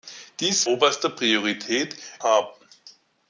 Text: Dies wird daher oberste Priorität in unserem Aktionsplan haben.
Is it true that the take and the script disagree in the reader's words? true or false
true